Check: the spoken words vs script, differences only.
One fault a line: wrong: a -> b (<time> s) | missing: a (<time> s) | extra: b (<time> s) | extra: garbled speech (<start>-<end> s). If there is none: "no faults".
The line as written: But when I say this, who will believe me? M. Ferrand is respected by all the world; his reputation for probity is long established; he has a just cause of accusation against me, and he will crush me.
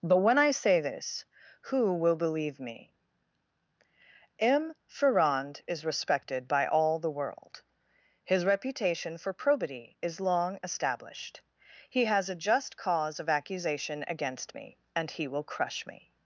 no faults